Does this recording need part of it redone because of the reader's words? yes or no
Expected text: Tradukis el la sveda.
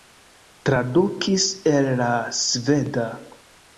no